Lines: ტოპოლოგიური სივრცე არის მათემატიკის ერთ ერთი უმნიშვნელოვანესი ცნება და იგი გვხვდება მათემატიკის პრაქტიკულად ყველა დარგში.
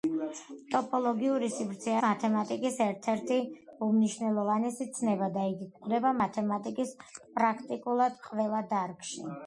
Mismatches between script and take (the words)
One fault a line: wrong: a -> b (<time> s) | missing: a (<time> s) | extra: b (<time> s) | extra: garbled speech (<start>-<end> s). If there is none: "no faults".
missing: არის (2.0 s)